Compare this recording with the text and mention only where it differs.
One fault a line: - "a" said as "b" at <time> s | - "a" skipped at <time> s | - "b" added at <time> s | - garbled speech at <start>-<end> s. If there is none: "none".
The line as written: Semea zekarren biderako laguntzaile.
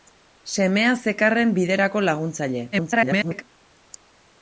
- garbled speech at 2.7-3.4 s